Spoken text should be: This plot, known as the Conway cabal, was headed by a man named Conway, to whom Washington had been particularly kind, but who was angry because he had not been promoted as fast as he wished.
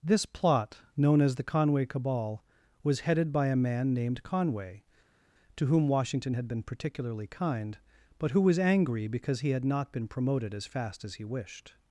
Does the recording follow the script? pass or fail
pass